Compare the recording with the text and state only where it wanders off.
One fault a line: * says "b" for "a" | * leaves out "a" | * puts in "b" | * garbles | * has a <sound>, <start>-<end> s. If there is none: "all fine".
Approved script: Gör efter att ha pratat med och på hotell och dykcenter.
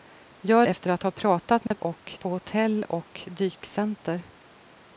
* has a dropout, 1.7-1.7 s